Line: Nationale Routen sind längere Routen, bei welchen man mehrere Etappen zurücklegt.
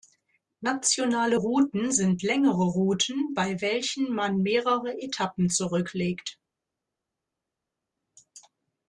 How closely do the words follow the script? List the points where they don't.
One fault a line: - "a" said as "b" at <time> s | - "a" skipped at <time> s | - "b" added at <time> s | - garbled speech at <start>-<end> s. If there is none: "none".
none